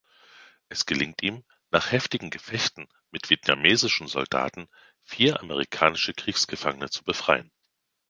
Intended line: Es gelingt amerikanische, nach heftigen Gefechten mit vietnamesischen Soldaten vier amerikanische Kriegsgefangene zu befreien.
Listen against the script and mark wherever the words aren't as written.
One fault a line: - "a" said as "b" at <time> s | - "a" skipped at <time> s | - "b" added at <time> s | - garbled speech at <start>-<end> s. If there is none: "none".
- "amerikanische" said as "ihm" at 1.2 s